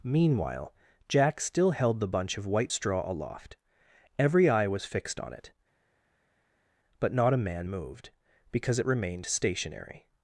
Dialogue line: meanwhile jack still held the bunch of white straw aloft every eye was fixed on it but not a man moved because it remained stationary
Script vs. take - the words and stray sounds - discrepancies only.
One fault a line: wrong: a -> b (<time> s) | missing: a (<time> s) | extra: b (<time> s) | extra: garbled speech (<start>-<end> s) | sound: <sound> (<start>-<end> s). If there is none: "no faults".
no faults